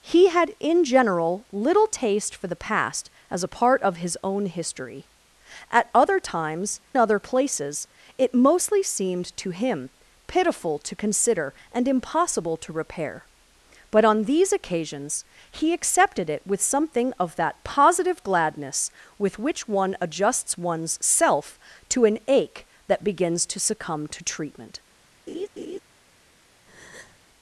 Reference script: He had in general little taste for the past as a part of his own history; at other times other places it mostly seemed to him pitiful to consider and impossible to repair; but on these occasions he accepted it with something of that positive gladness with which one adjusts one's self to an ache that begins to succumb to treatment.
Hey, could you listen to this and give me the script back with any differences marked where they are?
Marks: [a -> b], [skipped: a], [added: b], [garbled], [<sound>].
He had in general little taste for the past as a part of his own history; at other times other places it mostly seemed to him pitiful to consider and impossible to repair; but on these occasions he accepted it with something of that positive gladness with which one adjusts one's self to an ache that begins to succumb to treatment. [laugh] [breath]